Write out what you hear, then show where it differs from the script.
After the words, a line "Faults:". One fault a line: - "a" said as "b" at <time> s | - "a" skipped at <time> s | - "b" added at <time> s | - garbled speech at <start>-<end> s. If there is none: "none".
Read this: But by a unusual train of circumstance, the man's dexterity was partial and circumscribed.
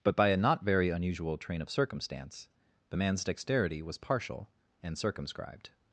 But by a not very unusual train of circumstance, the man's dexterity was partial and circumscribed.
Faults:
- "not very" added at 0.4 s